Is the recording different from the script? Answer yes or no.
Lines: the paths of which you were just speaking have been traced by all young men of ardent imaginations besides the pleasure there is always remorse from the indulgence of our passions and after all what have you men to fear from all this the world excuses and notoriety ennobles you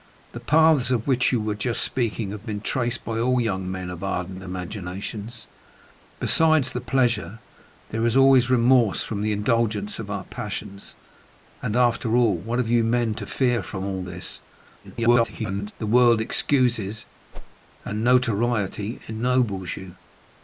yes